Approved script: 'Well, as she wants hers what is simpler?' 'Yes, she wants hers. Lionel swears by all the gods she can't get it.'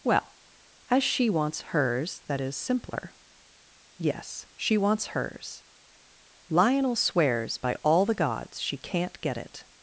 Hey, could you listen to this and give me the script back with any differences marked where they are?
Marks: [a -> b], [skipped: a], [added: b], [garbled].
'Well, as she wants hers [what -> that] is simpler?' 'Yes, she wants hers. Lionel swears by all the gods she can't get it.'